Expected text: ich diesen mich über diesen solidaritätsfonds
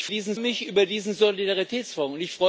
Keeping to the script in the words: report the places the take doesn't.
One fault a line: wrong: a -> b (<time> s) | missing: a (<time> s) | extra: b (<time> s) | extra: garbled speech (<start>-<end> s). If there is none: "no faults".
no faults